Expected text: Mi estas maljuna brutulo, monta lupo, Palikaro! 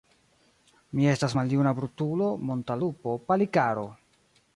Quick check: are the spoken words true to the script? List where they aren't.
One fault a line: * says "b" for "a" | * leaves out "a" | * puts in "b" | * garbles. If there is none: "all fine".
all fine